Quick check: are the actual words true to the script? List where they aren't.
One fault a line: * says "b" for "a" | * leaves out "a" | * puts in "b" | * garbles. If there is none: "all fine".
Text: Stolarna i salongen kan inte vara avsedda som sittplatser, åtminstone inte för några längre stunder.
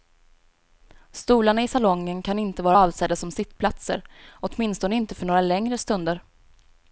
all fine